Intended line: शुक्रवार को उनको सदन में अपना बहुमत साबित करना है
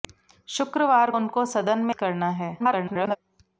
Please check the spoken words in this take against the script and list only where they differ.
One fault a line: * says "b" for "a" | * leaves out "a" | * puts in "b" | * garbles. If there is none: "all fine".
* leaves out "को"
* leaves out "अपना बहुमत साबित"
* garbles